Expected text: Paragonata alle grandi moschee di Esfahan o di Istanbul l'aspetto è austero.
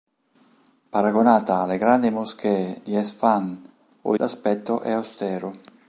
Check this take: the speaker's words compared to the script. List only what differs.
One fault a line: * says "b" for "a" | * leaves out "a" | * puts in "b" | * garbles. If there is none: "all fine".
* leaves out "di Istanbul"